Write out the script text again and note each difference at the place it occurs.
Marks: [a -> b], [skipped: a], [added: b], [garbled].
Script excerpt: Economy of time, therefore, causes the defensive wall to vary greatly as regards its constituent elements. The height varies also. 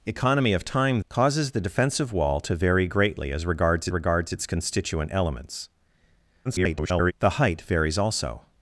Economy of time, [skipped: therefore,] causes the defensive wall to vary greatly as regards [added: regards] its constituent elements. [garbled] The height varies also.